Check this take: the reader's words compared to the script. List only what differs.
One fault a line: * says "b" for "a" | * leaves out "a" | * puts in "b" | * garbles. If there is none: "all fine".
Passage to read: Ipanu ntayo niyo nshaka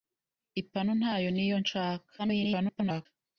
* garbles